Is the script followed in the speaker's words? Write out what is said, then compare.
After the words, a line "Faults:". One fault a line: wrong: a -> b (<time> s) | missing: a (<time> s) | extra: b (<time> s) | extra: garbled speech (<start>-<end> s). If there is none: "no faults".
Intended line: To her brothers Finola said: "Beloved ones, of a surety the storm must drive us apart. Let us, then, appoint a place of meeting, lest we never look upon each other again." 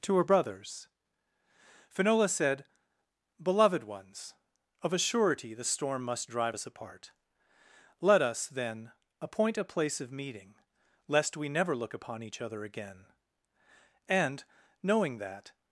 To her brothers Finola said: "Beloved ones, of a surety the storm must drive us apart. Let us, then, appoint a place of meeting, lest we never look upon each other again." And, knowing that
Faults:
extra: And knowing that (14.1 s)